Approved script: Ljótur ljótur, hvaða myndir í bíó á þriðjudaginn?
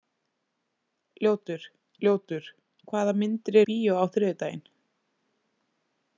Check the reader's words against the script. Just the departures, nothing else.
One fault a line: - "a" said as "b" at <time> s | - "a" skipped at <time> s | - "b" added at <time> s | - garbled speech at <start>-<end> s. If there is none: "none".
none